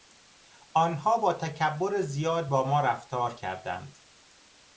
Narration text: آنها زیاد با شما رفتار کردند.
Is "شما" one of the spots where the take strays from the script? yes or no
yes